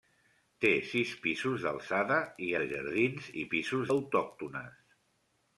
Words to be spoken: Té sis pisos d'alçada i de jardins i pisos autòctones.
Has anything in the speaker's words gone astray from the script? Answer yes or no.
no